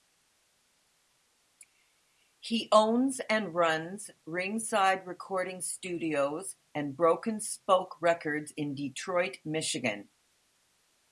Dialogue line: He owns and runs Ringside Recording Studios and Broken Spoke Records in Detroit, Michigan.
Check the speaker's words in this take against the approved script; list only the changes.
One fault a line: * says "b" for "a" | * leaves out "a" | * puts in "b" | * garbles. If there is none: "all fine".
all fine